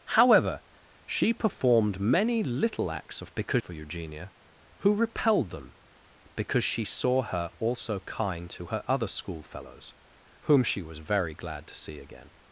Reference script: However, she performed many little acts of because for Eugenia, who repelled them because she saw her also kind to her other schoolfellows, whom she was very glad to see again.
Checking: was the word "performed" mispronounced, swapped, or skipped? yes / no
no